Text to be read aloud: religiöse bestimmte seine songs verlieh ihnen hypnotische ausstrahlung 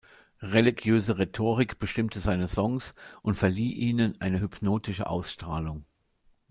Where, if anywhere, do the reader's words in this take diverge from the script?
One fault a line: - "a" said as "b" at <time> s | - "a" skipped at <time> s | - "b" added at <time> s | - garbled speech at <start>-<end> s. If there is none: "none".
- "rhetorik" added at 1.2 s
- "und" added at 3.2 s
- "eine" added at 4.2 s